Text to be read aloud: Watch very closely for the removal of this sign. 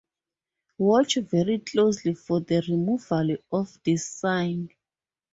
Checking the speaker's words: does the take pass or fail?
pass